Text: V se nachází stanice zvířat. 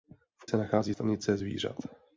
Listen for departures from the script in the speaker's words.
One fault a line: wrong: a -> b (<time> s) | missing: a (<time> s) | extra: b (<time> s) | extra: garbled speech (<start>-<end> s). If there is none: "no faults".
no faults